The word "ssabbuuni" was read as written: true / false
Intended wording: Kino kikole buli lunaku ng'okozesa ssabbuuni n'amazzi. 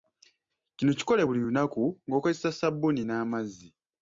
true